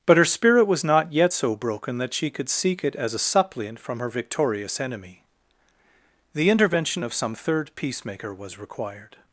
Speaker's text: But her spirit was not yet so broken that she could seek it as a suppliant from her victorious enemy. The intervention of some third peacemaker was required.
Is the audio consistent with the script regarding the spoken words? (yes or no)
yes